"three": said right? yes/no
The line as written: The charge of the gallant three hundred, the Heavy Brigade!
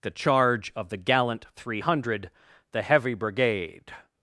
yes